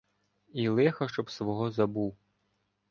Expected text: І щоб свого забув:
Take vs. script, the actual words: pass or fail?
fail